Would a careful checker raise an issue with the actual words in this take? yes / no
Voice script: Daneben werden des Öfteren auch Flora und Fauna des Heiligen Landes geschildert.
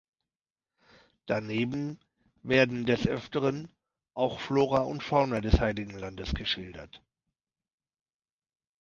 no